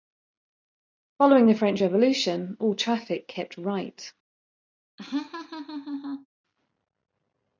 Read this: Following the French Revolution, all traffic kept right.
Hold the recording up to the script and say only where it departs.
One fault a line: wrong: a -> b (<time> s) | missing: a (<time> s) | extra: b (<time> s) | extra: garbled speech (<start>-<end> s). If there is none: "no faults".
no faults